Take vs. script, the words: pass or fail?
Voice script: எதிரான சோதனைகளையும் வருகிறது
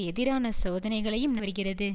pass